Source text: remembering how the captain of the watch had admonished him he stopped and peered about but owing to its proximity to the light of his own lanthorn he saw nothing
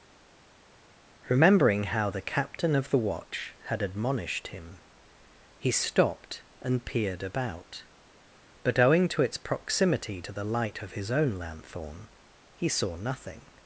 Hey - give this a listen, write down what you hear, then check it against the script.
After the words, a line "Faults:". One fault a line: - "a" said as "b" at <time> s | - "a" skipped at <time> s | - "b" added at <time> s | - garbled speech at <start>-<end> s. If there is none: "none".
remembering how the captain of the watch had admonished him he stopped and peered about but owing to its proximity to the light of his own lanthorn he saw nothing
Faults:
none